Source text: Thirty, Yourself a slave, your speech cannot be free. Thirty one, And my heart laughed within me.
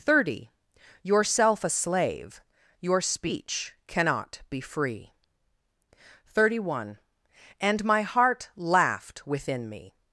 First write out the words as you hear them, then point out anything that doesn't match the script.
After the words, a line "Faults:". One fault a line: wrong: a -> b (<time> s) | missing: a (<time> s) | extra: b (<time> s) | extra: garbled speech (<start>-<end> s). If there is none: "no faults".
Thirty, Yourself a slave, your speech cannot be free. Thirty one, And my heart laughed within me.
Faults:
no faults